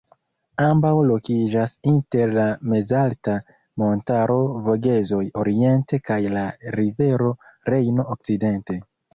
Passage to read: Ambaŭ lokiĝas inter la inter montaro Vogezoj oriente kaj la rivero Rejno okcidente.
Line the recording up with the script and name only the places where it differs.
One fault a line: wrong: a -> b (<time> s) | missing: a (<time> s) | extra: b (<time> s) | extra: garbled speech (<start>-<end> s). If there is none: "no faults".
wrong: inter -> mezalta (2.7 s)